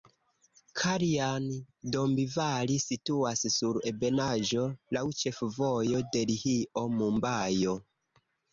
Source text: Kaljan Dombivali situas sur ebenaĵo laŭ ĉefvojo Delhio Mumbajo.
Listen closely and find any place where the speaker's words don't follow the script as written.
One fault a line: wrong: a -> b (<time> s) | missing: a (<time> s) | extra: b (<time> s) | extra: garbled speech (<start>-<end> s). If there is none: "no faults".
no faults